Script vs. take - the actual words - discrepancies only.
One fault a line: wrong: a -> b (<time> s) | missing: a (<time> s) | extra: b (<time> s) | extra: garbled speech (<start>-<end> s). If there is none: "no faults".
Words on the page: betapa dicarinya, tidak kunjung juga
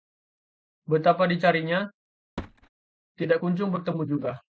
extra: bertemu (3.7 s)